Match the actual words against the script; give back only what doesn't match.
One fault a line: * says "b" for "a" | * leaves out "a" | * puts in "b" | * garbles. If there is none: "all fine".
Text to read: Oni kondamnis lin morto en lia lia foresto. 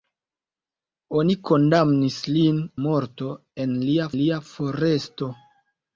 all fine